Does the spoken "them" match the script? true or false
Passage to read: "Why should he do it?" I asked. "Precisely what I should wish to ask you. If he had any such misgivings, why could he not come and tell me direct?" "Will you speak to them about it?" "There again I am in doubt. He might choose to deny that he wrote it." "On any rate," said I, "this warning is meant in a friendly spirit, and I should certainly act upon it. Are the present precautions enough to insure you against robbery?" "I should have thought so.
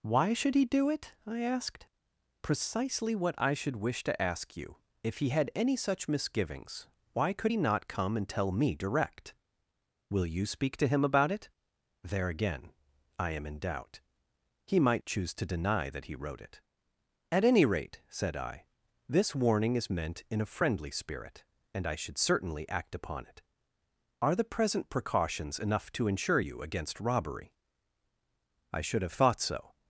false